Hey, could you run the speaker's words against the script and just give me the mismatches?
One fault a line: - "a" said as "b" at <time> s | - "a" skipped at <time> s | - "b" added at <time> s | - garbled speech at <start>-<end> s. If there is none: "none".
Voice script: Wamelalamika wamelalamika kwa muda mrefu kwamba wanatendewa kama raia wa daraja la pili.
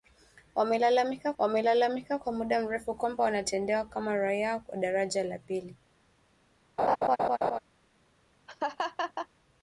none